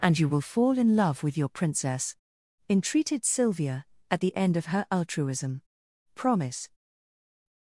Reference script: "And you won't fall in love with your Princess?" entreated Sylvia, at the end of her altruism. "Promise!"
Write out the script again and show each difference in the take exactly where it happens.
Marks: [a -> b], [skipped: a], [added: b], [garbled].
"And you [won't -> will] fall in love with your Princess?" entreated Sylvia, at the end of her altruism. "Promise!"